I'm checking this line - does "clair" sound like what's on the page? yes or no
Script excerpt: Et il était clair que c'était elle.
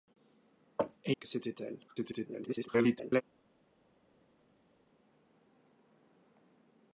no